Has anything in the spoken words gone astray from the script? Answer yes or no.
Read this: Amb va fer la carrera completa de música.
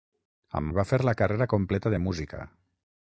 no